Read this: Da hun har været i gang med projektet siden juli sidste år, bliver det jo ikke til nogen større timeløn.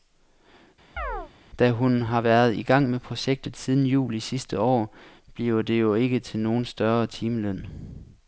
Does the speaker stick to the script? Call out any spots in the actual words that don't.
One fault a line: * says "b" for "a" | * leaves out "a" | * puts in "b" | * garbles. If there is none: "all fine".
all fine